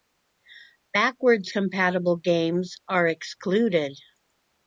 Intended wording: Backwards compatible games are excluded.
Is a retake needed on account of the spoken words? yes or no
no